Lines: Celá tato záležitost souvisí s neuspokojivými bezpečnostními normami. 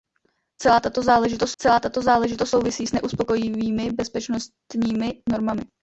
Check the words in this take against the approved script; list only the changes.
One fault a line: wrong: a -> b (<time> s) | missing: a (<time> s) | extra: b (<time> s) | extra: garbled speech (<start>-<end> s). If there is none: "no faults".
extra: celá tato záležitost (1.6 s)